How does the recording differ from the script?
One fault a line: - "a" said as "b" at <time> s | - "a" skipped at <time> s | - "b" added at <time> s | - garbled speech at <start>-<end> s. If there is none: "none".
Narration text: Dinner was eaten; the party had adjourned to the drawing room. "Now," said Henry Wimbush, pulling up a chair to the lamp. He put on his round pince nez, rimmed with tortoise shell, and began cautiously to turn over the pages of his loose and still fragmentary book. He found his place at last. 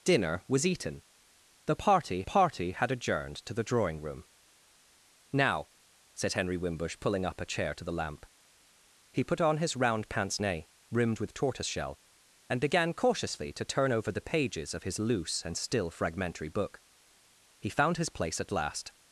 - "party" added at 2.2 s